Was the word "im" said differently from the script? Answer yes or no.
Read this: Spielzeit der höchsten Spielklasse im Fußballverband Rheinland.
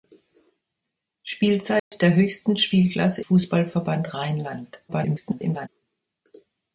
yes